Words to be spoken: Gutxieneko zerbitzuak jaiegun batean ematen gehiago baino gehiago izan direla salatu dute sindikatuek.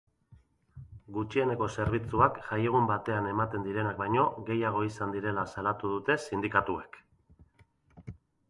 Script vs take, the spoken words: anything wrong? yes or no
yes